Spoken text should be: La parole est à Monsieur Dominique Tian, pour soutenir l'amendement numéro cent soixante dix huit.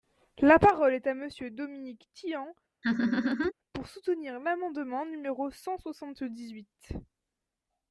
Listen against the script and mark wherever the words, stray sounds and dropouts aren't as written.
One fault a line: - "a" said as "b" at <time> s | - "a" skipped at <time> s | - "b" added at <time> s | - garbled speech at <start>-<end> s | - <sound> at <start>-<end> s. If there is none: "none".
- laugh at 2.8-3.5 s